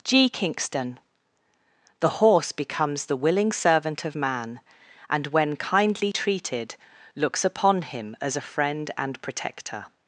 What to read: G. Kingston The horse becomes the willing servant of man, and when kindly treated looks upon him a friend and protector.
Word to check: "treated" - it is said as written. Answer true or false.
true